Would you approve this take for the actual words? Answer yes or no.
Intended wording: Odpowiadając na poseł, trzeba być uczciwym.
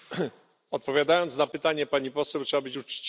no